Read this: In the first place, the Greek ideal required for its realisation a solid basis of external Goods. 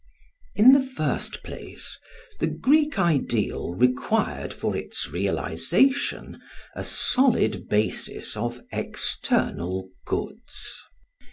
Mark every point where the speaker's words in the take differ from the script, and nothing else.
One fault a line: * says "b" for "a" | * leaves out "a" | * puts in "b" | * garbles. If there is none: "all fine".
all fine